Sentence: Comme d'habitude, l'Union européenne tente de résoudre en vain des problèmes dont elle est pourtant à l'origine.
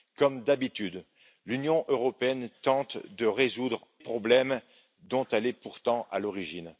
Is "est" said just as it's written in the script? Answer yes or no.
yes